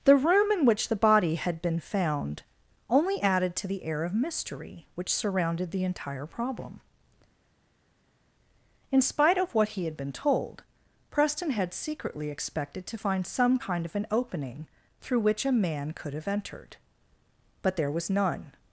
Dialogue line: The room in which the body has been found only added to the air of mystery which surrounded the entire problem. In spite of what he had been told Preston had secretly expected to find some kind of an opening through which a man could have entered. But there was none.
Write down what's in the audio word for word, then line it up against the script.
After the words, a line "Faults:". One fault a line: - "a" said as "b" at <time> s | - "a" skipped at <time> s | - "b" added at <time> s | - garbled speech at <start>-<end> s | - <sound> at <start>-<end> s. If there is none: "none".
The room in which the body had been found only added to the air of mystery which surrounded the entire problem. In spite of what he had been told Preston had secretly expected to find some kind of an opening through which a man could have entered. But there was none.
Faults:
- "has" said as "had" at 1.4 s